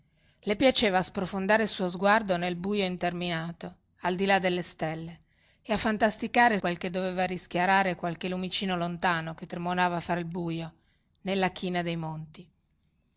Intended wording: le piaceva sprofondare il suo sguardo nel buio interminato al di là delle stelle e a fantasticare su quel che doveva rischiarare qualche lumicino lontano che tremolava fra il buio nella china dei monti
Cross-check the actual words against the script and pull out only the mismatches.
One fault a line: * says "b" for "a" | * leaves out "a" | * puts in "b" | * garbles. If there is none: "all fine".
* leaves out "su"